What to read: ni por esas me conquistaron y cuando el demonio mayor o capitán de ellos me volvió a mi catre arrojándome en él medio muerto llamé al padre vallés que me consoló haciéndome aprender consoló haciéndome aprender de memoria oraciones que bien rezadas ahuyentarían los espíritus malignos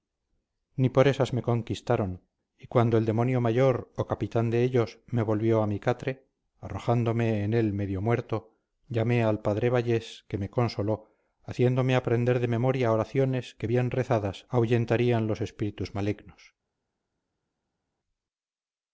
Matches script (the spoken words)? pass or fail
fail